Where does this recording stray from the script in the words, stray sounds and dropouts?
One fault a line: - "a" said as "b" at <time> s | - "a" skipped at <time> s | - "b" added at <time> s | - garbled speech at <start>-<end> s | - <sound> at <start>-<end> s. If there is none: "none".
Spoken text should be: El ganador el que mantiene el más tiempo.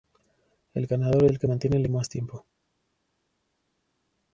none